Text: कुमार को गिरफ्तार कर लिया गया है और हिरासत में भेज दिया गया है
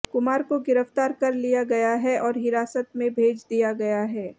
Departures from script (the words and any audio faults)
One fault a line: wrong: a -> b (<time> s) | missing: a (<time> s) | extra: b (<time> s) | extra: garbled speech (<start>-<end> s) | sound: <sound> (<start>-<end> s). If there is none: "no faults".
no faults